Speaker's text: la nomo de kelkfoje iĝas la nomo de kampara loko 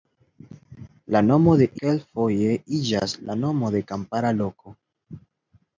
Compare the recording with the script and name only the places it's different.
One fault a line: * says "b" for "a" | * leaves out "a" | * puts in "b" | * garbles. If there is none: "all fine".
all fine